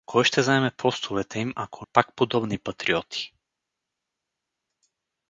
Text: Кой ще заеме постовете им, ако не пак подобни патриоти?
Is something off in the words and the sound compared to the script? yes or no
yes